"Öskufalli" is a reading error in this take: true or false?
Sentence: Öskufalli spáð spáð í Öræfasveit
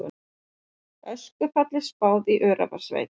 false